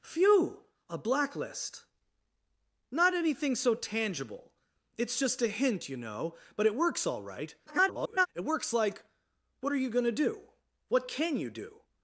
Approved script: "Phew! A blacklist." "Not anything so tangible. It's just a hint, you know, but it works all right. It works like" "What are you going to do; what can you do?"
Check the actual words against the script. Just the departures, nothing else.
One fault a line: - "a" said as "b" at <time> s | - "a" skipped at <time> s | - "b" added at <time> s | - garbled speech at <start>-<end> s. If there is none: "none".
- garbled speech at 7.7-8.3 s